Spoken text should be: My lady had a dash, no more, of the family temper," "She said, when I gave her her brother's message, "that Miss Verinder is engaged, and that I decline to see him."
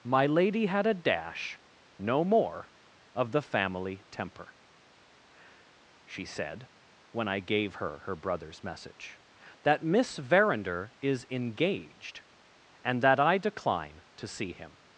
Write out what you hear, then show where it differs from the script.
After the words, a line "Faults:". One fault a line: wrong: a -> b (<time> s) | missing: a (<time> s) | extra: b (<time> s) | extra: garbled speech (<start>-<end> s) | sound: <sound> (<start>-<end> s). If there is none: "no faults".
My lady had a dash, no more, of the family temper," "She said, when I gave her her brother's message, "that Miss Verinder is engaged, and that I decline to see him."
Faults:
no faults